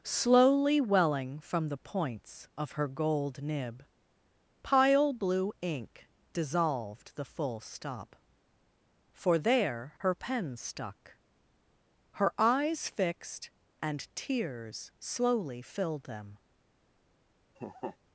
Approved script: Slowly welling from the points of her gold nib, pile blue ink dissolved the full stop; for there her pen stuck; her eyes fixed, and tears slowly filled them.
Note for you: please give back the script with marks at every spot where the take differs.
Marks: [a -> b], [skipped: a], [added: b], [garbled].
Slowly welling from the points of her gold nib, pile blue ink dissolved the full stop; for there her pen stuck; her eyes fixed, and tears slowly filled them.